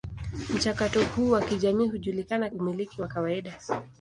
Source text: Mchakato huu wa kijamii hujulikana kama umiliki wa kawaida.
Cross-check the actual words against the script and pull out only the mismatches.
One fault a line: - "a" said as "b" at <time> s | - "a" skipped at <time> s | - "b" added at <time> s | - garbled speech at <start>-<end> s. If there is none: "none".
- "kama" skipped at 2.5 s